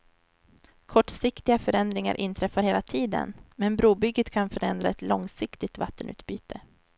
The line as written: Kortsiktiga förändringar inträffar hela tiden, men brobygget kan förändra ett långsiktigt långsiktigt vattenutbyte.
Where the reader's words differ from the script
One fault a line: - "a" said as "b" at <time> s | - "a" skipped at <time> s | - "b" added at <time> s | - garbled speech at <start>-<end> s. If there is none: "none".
- "långsiktigt" skipped at 5.8 s